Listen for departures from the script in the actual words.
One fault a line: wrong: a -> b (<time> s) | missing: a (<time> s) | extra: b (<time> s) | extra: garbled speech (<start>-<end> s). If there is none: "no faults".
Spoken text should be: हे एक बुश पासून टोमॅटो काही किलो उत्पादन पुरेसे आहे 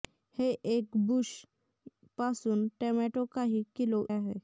missing: उत्पादन पुरेसे (4.0 s)